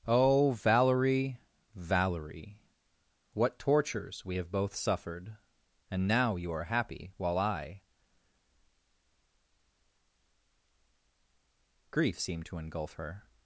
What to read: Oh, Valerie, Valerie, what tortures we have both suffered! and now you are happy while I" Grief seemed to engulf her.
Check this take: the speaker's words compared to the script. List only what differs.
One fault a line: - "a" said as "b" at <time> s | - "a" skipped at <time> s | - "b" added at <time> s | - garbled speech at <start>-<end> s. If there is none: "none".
none